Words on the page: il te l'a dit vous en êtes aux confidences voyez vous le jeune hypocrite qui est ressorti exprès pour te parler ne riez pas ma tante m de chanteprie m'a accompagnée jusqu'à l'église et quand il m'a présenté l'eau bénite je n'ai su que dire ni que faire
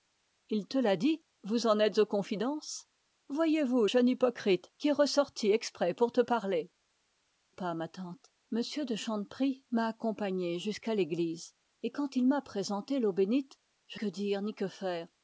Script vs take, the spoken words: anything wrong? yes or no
yes